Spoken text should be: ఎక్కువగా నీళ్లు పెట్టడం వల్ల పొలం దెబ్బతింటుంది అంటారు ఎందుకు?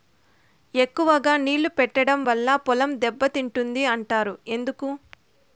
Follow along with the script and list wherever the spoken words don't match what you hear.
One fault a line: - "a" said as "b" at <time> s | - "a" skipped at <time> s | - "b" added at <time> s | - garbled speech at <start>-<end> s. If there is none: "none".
none